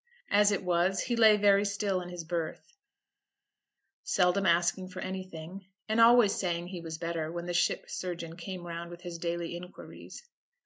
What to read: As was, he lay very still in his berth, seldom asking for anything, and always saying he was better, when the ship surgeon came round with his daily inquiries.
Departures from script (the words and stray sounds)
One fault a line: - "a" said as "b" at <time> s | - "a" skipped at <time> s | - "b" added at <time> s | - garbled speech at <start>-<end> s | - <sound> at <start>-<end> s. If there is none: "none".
- "it" added at 0.5 s